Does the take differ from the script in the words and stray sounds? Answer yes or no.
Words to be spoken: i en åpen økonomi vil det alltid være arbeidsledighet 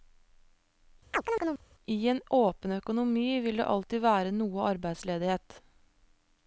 yes